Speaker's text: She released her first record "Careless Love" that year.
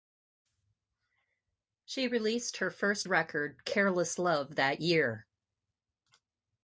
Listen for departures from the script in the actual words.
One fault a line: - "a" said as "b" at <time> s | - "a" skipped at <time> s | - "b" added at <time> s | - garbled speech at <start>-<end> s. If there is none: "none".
none